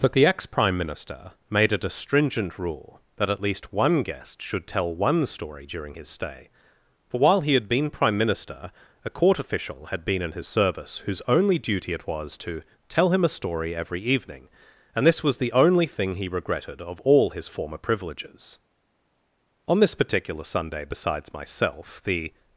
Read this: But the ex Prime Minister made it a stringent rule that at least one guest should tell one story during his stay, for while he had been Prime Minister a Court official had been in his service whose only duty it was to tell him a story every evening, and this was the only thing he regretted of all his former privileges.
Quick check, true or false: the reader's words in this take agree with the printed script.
false